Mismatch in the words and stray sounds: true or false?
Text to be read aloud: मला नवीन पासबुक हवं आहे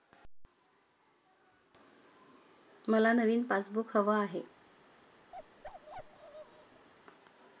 true